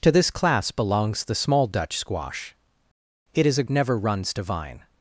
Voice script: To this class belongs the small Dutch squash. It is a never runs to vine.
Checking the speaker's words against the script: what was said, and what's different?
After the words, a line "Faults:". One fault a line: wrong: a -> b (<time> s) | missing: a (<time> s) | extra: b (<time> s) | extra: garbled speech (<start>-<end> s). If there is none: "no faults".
To this class belongs the small Dutch squash. It is a never runs to vine.
Faults:
no faults